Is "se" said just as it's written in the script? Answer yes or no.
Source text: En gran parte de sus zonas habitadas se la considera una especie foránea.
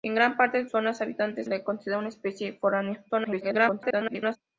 no